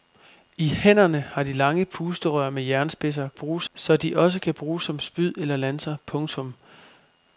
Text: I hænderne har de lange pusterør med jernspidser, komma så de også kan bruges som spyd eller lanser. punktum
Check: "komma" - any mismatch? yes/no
yes